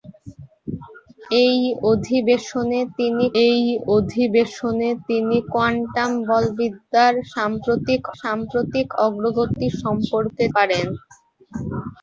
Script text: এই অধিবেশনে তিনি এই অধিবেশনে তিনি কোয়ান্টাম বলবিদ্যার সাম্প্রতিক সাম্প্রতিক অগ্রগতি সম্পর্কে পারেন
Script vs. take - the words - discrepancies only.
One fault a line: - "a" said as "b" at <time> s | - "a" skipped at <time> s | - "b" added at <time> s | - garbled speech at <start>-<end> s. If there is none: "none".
none